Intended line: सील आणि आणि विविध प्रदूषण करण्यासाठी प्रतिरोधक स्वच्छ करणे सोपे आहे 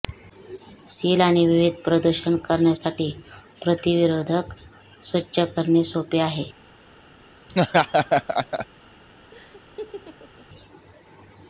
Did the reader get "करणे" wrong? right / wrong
right